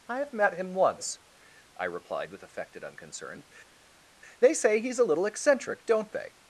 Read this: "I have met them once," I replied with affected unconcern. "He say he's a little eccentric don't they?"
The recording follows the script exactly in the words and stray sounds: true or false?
false